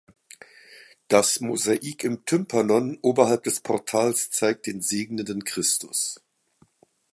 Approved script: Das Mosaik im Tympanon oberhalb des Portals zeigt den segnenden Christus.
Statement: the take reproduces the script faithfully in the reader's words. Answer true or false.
true